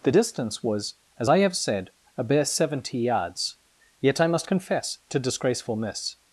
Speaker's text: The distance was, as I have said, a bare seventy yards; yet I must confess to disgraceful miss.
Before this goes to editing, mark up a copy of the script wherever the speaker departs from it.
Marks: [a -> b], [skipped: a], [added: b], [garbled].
The distance was, as I have said, a bare seventy yards; yet I must confess to disgraceful miss.